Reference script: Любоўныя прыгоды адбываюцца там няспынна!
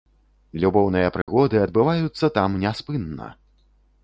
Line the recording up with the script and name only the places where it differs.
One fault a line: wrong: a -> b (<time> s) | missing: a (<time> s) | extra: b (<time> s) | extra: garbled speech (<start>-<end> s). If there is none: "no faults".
no faults